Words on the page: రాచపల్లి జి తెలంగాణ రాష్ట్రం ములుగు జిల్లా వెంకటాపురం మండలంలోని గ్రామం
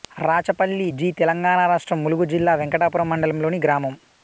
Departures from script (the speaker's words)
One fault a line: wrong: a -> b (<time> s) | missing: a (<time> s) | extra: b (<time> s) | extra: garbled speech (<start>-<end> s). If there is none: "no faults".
no faults